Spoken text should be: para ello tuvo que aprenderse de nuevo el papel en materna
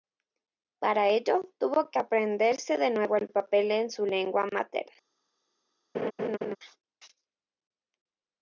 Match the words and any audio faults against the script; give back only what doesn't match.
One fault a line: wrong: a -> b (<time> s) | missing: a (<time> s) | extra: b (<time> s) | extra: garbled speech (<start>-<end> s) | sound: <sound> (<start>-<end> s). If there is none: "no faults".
extra: su lengua (3.9 s)
sound: laugh (5.9-6.6 s)